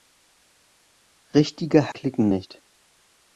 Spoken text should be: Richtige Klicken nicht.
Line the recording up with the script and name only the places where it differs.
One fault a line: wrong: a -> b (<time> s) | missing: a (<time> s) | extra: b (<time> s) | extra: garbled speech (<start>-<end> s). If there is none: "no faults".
no faults